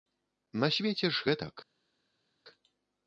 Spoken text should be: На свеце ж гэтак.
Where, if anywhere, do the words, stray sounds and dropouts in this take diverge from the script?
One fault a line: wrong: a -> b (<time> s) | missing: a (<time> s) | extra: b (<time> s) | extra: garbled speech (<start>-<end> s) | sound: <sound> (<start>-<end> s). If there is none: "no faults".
no faults